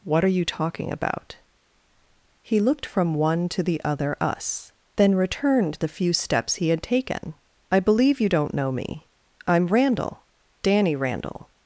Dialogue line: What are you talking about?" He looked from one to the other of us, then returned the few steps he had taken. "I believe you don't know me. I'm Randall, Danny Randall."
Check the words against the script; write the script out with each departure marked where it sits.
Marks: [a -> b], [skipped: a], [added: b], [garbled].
What are you talking about?" He looked from one to the other [skipped: of] us, then returned the few steps he had taken. "I believe you don't know me. I'm Randall, Danny Randall."